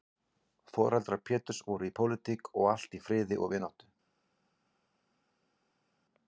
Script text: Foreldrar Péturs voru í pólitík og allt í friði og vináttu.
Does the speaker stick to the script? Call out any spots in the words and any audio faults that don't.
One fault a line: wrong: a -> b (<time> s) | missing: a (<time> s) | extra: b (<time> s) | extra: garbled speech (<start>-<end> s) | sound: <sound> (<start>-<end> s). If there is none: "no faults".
no faults